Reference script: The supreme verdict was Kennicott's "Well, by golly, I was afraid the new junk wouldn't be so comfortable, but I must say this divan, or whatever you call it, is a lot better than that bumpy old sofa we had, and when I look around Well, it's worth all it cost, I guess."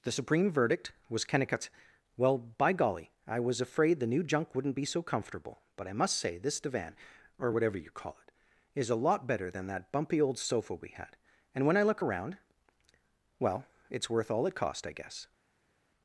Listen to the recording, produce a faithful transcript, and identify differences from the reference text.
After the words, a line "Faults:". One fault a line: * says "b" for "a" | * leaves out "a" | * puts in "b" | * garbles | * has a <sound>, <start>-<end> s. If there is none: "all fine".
The supreme verdict was Kennicott's "Well, by golly, I was afraid the new junk wouldn't be so comfortable, but I must say this divan, or whatever you call it, is a lot better than that bumpy old sofa we had, and when I look around Well, it's worth all it cost, I guess."
Faults:
all fine